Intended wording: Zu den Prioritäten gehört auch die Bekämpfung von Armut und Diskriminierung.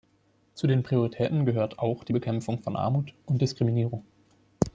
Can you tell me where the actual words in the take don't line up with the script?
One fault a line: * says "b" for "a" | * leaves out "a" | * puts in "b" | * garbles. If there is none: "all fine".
all fine